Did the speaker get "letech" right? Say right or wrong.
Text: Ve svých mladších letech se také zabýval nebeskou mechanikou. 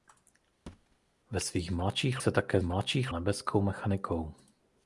wrong